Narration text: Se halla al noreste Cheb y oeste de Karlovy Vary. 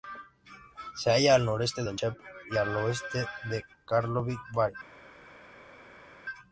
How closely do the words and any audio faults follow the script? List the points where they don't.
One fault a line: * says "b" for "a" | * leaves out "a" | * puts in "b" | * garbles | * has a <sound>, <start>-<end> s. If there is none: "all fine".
* puts in "de"
* puts in "al"